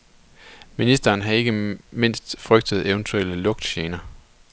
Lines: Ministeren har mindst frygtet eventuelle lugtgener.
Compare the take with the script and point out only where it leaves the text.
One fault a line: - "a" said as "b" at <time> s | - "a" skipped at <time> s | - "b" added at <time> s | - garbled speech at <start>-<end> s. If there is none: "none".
- "ikke" added at 1.3 s